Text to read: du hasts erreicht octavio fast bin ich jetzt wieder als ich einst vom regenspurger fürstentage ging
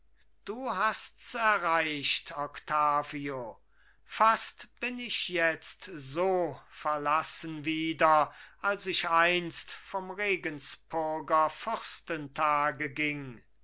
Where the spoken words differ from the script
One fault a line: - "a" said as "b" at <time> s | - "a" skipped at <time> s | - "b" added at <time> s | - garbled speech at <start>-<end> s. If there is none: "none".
- "so verlassen" added at 5.9 s